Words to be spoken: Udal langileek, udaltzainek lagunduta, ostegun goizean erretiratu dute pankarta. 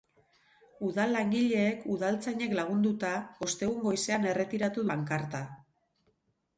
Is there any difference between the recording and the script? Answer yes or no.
yes